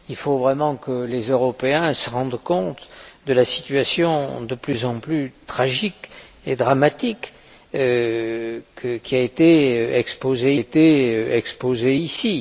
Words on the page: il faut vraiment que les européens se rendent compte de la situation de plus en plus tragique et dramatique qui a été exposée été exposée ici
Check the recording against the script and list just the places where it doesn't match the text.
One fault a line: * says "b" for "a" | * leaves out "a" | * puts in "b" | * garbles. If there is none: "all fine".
all fine